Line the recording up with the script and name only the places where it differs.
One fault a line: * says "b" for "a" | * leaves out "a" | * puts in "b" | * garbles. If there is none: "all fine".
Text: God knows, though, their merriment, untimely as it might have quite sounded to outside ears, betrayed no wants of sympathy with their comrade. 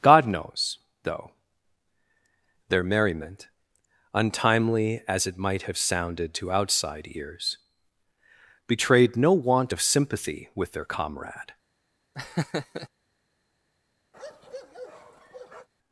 * leaves out "quite"
* says "want" for "wants"